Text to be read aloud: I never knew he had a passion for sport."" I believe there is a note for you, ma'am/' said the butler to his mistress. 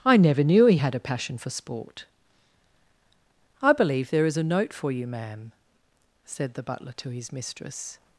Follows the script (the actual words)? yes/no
yes